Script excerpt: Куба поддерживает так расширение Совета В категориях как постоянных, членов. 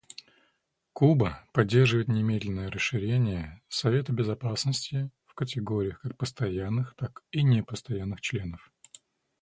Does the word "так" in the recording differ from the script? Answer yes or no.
yes